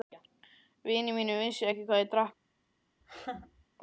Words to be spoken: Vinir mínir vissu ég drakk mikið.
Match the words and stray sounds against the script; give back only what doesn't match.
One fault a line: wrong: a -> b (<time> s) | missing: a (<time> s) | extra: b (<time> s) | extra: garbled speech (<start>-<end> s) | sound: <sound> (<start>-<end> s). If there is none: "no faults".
extra: ekki hvað (1.7 s)
sound: laugh (3.0-3.7 s)